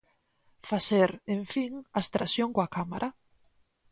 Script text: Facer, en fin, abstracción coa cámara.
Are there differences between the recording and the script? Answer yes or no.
no